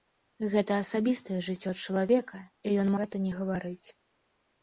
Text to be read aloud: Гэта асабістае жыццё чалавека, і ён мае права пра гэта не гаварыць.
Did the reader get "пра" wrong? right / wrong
wrong